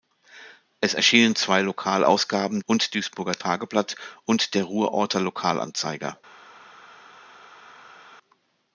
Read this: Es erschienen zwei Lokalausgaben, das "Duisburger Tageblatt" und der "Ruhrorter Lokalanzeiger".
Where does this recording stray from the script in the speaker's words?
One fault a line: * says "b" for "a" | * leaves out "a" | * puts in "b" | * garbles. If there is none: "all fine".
* says "und" for "das"